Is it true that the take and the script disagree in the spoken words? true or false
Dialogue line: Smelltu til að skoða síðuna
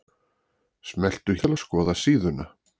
false